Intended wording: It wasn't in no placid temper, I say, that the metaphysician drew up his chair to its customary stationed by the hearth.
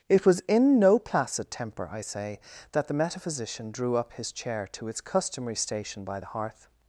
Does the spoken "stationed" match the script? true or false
false